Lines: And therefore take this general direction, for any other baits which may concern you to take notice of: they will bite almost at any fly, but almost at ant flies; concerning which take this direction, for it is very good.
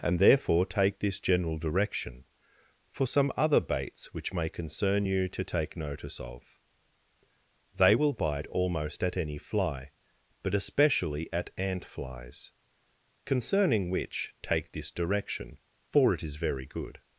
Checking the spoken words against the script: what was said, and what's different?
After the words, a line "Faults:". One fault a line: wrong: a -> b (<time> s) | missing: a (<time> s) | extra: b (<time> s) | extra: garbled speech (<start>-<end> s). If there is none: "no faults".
And therefore take this general direction, for some other baits which may concern you to take notice of: they will bite almost at any fly, but especially at ant flies; concerning which take this direction, for it is very good.
Faults:
wrong: any -> some (3.0 s)
wrong: almost -> especially (10.5 s)